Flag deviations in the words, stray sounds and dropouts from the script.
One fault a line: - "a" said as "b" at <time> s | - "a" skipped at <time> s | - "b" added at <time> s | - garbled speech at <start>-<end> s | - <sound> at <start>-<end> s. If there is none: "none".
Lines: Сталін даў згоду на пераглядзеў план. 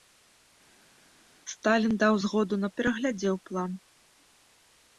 none